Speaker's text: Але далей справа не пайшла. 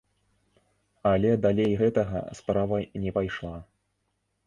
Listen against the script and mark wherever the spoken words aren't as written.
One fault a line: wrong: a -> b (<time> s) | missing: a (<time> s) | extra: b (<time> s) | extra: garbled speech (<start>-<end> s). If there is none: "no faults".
extra: гэтага (1.8 s)